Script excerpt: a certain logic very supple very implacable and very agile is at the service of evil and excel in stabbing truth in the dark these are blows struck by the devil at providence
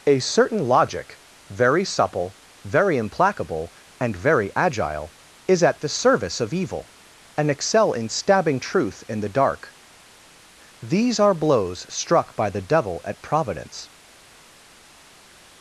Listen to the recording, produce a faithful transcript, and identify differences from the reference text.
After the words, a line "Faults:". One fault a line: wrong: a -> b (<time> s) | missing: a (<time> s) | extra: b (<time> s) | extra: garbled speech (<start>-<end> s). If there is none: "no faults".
a certain logic very supple very implacable and very agile is at the service of evil and excel in stabbing truth in the dark these are blows struck by the devil at providence
Faults:
no faults